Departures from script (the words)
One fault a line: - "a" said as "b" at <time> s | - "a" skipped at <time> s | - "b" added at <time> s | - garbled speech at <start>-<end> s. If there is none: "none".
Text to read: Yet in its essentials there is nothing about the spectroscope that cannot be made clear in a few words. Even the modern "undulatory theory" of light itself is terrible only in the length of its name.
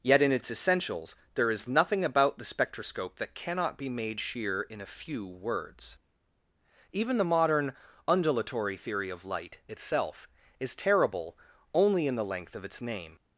- "clear" said as "sheer" at 4.2 s